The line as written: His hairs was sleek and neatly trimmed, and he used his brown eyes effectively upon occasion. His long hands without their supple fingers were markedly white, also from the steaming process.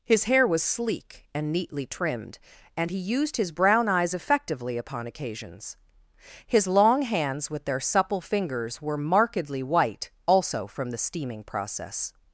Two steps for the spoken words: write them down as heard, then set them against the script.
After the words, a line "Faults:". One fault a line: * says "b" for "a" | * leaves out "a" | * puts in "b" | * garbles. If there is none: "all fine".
His hair was sleek and neatly trimmed, and he used his brown eyes effectively upon occasions. His long hands with their supple fingers were markedly white, also from the steaming process.
Faults:
* says "hair" for "hairs"
* says "occasions" for "occasion"
* says "with" for "without"